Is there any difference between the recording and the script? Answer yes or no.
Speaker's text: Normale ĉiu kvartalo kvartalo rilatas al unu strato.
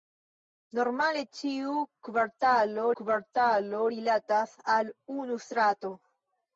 no